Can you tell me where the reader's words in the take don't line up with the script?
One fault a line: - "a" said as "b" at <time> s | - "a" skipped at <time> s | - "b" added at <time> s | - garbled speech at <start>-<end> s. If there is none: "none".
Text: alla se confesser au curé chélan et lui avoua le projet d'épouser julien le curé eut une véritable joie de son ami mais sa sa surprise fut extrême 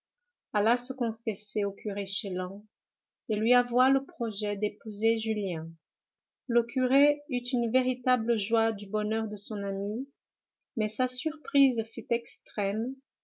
- "du bonheur" added at 8.7 s
- "sa" skipped at 11.1 s